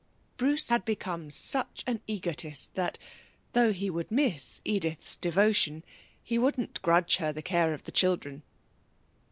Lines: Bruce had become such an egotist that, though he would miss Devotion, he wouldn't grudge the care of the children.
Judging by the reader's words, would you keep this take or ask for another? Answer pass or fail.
fail